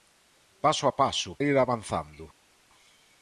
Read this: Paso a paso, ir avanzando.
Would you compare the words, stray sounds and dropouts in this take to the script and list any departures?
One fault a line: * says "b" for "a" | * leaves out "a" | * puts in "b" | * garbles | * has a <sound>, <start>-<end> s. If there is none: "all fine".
all fine